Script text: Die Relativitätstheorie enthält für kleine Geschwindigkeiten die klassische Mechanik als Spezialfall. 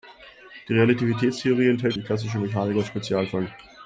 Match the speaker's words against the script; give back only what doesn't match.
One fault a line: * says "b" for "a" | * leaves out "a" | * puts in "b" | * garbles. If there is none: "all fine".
* leaves out "für kleine Geschwindigkeiten"